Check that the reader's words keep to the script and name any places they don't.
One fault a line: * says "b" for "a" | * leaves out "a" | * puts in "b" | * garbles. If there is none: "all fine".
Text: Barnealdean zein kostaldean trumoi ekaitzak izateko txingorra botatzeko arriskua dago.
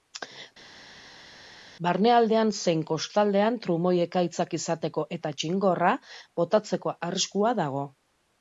* puts in "eta"